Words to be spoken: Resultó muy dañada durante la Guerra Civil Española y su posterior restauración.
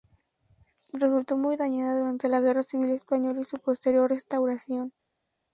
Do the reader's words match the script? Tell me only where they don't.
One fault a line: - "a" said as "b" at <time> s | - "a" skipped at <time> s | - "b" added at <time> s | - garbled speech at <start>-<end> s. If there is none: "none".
none